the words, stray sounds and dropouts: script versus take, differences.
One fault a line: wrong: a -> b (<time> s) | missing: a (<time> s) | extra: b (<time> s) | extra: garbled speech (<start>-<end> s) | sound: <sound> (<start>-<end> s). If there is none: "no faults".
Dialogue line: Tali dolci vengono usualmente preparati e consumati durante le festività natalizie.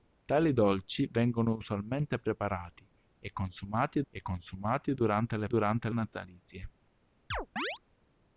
extra: e consumati (4.1 s)
wrong: festività -> durante (5.4 s)
sound: chirp (7.3-7.8 s)